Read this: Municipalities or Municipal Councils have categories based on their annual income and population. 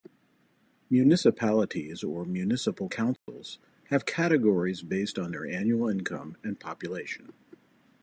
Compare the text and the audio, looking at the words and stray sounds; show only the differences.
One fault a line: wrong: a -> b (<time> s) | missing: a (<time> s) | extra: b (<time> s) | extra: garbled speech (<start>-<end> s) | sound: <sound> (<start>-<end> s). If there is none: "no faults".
sound: dropout (3.2-3.3 s)